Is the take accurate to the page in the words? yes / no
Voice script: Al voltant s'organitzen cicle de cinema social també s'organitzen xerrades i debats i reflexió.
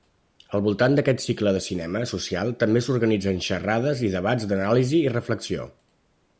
no